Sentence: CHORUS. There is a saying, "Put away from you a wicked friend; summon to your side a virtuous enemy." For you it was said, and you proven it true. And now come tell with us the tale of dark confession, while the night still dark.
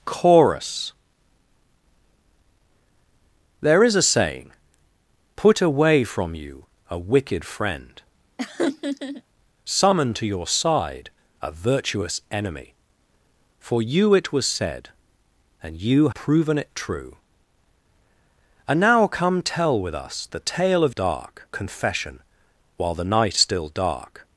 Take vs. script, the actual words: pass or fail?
pass